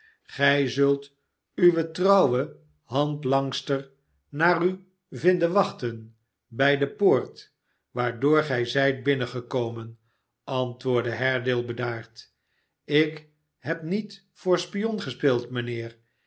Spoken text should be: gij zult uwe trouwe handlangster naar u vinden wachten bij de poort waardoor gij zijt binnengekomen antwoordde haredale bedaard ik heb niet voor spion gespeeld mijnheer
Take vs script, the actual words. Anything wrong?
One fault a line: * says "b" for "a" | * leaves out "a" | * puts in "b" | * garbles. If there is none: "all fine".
all fine